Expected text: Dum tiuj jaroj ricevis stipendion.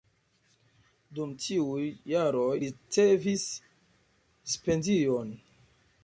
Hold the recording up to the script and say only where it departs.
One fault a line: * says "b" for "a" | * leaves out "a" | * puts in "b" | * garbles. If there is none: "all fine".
all fine